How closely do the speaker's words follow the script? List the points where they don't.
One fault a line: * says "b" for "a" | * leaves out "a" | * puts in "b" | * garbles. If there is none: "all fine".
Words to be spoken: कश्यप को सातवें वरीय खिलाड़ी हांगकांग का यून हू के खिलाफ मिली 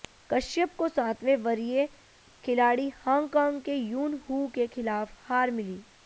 * says "के" for "का"
* puts in "हार"